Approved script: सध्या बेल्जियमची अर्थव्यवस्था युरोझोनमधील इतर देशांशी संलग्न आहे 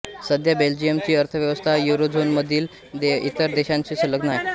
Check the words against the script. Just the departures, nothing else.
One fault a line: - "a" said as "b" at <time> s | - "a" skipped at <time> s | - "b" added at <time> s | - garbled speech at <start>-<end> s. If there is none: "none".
none